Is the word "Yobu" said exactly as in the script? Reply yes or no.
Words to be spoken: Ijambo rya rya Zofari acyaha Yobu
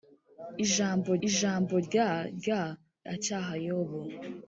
yes